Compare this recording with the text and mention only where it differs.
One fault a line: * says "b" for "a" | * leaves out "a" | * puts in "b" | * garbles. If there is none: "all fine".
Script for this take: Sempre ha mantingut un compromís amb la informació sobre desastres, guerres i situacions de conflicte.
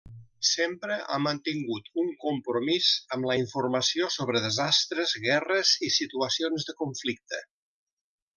all fine